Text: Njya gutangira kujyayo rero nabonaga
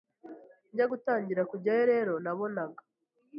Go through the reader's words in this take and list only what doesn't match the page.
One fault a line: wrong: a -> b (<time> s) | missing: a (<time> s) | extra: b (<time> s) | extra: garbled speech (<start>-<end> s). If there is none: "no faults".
no faults